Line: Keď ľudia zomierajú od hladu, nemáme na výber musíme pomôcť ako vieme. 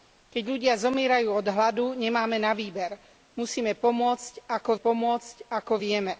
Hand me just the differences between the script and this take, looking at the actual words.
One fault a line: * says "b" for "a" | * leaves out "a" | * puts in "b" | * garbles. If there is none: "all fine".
* puts in "pomôcť ako"